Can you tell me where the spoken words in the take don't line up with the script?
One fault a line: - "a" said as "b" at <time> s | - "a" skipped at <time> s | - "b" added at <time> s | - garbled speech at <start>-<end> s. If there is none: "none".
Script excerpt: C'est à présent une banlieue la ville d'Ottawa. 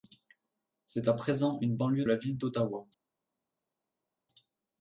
none